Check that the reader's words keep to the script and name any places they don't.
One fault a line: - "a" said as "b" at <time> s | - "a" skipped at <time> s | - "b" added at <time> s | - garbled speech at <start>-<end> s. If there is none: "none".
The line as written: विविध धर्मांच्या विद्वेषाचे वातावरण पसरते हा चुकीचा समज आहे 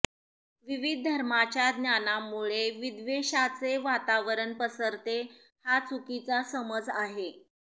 - "ज्ञानामुळे" added at 1.7 s